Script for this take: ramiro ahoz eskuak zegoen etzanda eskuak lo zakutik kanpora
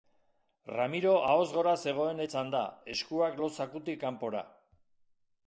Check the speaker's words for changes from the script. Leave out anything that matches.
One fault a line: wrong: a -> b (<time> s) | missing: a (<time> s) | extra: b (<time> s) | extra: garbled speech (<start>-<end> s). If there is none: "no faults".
wrong: eskuak -> gora (1.6 s)